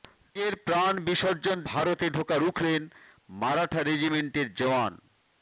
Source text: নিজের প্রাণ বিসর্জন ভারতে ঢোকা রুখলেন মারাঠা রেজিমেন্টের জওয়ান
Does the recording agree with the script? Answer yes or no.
yes